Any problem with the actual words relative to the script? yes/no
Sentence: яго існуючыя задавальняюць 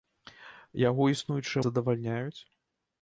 no